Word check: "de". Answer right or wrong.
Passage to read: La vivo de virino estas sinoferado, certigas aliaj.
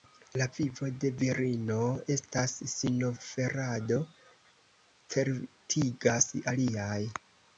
right